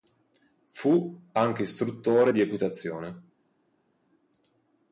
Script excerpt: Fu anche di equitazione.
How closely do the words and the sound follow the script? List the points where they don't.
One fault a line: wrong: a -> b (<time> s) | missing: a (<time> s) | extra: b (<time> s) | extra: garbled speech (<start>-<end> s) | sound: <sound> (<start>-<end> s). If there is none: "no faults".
extra: istruttore (1.6 s)